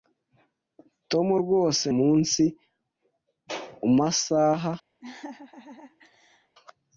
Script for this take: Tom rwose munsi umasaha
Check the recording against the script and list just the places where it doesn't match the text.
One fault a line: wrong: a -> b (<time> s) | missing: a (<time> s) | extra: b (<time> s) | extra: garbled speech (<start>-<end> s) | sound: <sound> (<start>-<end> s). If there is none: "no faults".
sound: laugh (5.0-6.6 s)